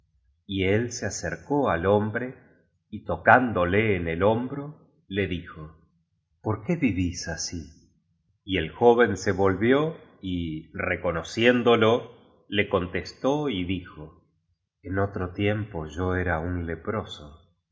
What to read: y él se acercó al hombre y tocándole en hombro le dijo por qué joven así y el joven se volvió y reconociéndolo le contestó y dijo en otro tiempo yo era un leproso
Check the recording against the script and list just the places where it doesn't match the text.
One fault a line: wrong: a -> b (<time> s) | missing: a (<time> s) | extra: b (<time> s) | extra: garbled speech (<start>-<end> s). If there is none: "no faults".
extra: el (4.1 s)
wrong: joven -> vivís (6.8 s)